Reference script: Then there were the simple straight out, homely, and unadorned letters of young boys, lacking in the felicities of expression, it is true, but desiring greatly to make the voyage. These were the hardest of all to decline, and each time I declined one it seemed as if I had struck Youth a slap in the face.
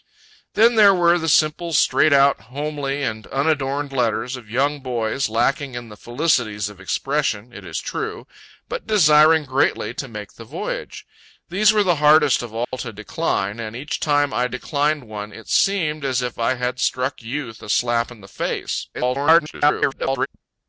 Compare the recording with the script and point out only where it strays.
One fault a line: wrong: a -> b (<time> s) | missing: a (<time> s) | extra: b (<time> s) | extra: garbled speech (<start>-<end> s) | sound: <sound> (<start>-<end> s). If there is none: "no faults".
sound: dropout (12.6-12.7 s)
extra: garbled speech (18.9-20.3 s)